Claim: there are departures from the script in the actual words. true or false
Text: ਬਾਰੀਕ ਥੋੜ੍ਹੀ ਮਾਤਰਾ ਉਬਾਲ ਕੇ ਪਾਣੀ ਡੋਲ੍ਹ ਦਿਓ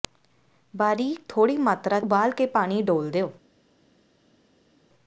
false